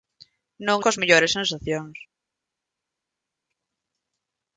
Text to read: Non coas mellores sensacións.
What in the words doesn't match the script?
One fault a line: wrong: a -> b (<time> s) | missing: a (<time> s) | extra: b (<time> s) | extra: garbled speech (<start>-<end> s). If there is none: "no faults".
no faults